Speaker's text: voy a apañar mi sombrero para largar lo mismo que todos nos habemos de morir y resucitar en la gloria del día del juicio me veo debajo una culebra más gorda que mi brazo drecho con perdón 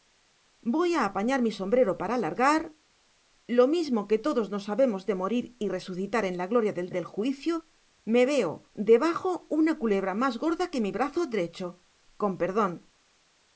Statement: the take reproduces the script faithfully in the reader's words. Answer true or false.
false